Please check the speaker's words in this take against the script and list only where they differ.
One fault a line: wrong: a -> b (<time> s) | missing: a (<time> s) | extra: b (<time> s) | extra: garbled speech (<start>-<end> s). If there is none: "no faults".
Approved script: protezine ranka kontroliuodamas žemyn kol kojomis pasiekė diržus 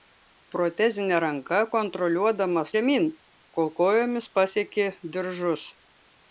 no faults